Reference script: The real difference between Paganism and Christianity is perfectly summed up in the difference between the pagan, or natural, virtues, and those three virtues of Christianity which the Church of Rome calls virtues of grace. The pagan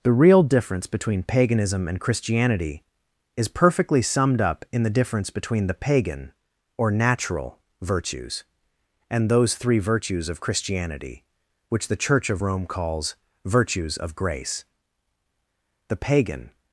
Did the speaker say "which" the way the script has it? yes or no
yes